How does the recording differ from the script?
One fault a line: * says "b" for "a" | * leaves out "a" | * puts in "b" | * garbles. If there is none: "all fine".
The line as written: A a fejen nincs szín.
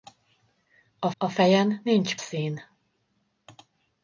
all fine